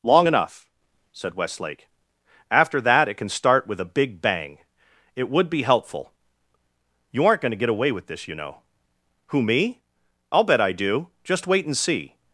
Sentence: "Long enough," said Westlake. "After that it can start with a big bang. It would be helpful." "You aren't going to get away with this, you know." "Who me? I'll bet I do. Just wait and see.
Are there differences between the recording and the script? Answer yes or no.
no